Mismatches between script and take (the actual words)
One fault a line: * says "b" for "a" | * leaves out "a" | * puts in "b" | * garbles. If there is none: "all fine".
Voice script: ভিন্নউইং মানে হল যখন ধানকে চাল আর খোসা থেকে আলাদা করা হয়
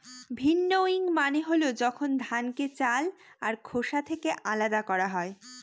all fine